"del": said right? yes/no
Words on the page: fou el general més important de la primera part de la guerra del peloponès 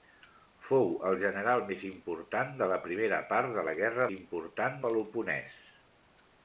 no